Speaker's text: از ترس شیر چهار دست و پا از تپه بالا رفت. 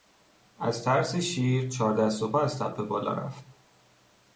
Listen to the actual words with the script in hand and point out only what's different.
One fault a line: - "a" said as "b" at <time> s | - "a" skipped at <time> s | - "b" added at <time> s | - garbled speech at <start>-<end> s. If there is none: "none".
none